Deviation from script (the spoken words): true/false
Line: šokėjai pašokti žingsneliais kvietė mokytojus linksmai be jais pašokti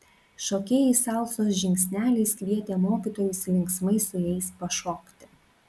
true